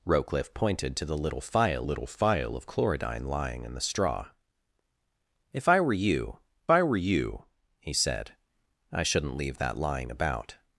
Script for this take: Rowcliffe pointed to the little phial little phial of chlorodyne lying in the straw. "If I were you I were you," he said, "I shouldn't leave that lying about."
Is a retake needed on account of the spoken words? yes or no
no